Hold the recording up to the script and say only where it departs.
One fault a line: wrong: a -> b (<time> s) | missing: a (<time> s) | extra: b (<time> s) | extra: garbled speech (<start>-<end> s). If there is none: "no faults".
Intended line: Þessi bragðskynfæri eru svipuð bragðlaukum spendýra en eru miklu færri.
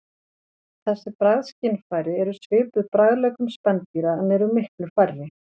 no faults